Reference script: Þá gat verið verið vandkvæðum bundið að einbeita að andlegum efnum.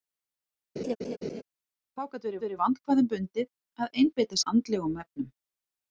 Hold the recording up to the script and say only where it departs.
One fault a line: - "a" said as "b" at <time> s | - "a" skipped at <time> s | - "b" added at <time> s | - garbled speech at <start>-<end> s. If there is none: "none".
none